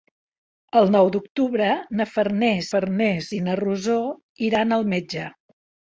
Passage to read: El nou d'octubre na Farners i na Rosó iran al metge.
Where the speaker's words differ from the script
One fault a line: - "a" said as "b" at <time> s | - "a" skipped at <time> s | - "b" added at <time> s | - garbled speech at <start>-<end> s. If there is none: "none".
- "Farners" added at 2.7 s